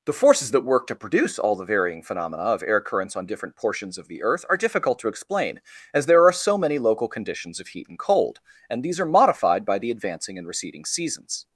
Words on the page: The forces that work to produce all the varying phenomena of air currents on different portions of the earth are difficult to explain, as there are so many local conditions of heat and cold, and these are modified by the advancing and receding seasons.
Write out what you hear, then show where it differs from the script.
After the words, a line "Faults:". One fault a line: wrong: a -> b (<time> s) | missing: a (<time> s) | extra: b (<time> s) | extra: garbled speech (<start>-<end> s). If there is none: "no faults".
The forces that work to produce all the varying phenomena of air currents on different portions of the earth are difficult to explain, as there are so many local conditions of heat and cold, and these are modified by the advancing and receding seasons.
Faults:
no faults